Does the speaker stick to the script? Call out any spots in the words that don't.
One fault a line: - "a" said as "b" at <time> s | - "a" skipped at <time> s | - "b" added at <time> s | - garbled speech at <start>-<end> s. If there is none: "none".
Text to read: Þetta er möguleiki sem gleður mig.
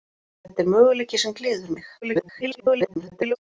- garbled speech at 2.0-3.4 s